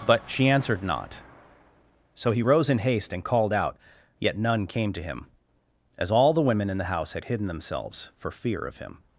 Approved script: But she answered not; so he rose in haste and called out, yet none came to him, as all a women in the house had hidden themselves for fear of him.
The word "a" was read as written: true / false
false